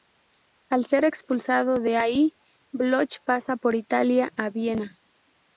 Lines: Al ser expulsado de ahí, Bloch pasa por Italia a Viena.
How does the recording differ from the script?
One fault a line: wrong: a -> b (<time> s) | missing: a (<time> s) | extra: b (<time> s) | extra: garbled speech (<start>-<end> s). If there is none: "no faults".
no faults